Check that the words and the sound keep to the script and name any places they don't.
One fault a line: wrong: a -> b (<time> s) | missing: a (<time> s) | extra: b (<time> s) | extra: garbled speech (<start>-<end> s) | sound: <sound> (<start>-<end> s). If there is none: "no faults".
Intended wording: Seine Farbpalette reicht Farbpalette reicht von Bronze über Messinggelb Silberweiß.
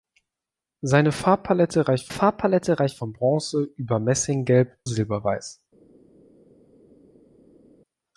no faults